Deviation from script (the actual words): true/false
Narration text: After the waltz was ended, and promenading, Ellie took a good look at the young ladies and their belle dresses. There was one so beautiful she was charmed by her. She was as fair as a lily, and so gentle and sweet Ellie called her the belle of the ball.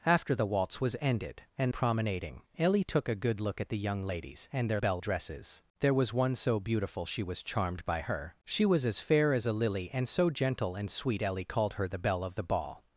false